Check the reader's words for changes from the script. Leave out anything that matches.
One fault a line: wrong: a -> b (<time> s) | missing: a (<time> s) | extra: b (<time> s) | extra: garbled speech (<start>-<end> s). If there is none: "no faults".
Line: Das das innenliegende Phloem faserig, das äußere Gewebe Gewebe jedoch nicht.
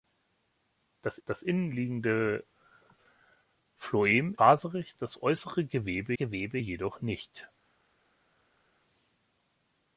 no faults